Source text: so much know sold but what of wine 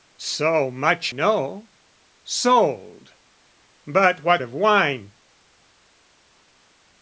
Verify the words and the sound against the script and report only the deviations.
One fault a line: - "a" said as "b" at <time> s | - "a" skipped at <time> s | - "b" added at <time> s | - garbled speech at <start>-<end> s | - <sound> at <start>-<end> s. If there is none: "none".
none